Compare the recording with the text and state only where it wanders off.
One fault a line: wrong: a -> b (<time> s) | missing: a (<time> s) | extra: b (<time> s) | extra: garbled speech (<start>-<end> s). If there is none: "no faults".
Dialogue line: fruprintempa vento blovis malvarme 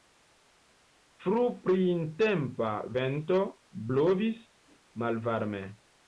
no faults